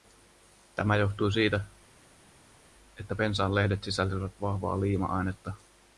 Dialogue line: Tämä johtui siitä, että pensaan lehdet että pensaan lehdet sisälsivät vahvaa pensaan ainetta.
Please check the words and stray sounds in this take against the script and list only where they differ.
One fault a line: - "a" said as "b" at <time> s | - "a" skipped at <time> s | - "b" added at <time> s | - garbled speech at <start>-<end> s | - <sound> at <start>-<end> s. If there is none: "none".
- "että pensaan lehdet" skipped at 3.8 s
- "pensaan" said as "liima" at 4.8 s